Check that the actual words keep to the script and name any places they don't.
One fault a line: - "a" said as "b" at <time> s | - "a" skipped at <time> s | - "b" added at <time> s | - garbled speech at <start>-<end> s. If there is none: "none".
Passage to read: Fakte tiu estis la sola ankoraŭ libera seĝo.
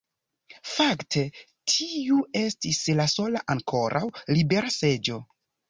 none